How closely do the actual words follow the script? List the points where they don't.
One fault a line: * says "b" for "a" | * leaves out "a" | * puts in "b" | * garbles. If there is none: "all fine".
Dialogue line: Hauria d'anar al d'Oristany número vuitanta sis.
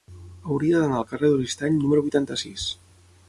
* puts in "carrer"